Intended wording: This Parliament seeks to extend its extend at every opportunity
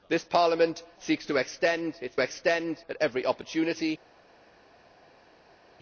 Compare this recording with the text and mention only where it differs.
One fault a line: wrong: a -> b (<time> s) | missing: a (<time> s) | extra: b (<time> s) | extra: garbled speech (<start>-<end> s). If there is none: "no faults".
no faults